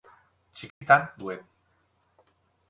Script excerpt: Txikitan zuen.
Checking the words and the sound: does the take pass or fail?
fail